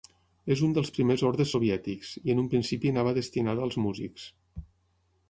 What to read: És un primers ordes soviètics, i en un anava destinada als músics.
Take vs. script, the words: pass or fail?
fail